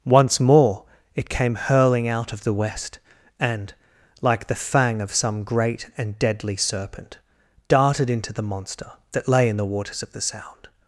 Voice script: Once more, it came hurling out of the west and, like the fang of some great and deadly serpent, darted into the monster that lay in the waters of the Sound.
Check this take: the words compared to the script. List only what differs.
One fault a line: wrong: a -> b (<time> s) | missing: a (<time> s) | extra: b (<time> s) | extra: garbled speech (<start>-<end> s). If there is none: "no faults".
no faults